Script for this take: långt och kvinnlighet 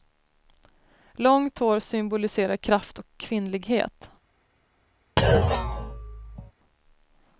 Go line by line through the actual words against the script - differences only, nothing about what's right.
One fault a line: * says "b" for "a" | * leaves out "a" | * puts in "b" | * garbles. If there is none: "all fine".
* puts in "hår symboliserar kraft"